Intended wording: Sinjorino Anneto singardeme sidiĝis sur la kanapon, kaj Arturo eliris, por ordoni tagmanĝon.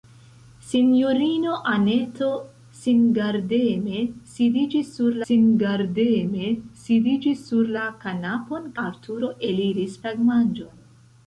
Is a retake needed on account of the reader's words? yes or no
yes